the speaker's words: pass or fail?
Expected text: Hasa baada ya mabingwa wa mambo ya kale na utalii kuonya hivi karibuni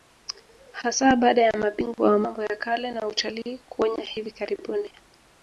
pass